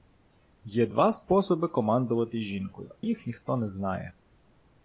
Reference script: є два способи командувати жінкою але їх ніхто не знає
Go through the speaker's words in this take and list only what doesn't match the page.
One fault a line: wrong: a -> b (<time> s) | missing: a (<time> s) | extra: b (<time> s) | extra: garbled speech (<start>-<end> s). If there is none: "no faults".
missing: але (2.9 s)